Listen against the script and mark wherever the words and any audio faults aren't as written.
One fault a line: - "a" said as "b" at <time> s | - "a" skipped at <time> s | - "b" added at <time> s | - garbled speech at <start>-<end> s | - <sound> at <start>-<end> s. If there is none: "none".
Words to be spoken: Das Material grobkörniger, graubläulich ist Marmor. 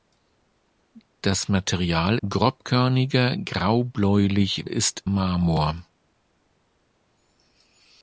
none